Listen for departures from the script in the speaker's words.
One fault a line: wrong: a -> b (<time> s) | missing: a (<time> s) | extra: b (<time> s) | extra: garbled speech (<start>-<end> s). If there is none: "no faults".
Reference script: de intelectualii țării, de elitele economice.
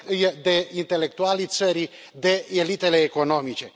no faults